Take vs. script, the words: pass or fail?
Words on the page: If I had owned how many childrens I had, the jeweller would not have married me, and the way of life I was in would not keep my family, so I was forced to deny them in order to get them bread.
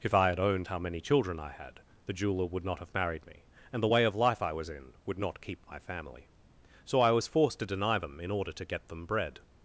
fail